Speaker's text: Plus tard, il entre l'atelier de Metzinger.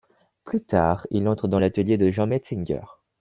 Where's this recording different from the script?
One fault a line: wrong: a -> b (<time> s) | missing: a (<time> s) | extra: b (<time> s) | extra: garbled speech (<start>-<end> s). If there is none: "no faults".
extra: dans (1.5 s)
extra: Jean (2.1 s)